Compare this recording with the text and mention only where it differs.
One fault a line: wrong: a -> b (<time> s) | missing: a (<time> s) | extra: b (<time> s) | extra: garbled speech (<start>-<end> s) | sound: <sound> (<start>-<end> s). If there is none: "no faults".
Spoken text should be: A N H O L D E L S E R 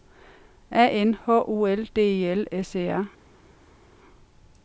no faults